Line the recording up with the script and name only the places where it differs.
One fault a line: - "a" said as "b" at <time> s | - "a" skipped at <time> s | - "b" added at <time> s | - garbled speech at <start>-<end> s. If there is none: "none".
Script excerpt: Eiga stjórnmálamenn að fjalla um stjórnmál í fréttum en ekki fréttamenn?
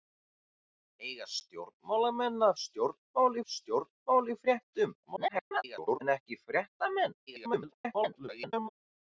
- "fjalla" said as "stjórnmál" at 2.6 s
- garbled speech at 5.1-6.0 s
- garbled speech at 7.3-8.7 s